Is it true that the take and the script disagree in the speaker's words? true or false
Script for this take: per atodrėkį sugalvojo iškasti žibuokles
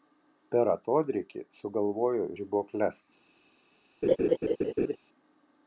true